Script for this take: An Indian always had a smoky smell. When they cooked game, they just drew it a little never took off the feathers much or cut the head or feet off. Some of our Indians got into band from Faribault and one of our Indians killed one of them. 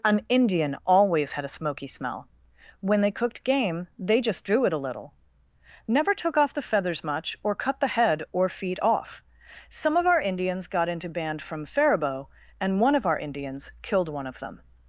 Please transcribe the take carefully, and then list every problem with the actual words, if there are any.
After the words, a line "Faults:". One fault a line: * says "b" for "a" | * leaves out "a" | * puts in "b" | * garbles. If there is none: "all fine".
An Indian always had a smoky smell. When they cooked game, they just drew it a little never took off the feathers much or cut the head or feet off. Some of our Indians got into band from Faribault and one of our Indians killed one of them.
Faults:
all fine